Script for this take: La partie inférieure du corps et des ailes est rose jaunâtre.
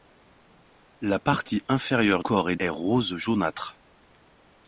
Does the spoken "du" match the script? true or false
false